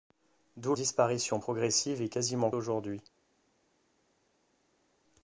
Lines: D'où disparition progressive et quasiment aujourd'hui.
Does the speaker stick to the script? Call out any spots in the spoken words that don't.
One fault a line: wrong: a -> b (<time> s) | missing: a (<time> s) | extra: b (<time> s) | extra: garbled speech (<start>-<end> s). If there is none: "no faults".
no faults